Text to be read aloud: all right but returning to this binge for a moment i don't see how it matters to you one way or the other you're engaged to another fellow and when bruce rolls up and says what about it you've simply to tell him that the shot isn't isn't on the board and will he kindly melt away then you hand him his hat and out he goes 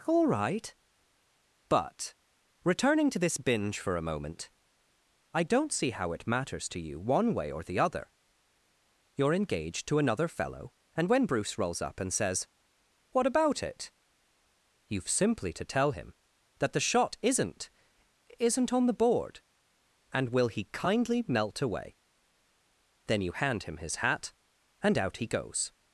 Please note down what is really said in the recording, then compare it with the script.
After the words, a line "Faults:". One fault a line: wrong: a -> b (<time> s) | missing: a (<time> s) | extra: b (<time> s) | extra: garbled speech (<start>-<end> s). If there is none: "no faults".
all right but returning to this binge for a moment i don't see how it matters to you one way or the other you're engaged to another fellow and when bruce rolls up and says what about it you've simply to tell him that the shot isn't isn't on the board and will he kindly melt away then you hand him his hat and out he goes
Faults:
no faults